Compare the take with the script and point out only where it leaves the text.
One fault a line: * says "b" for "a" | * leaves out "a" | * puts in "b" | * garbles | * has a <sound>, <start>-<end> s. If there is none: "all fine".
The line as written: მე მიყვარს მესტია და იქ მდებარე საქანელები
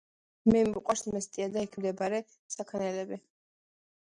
all fine